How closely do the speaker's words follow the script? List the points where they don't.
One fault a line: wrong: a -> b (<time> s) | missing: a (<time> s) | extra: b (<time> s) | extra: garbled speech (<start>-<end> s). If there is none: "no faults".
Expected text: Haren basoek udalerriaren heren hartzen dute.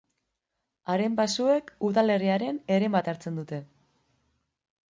extra: bat (3.0 s)